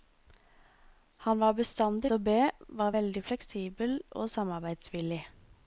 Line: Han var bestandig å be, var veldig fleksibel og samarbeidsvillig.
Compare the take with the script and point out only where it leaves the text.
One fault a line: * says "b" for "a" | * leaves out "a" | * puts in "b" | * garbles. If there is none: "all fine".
all fine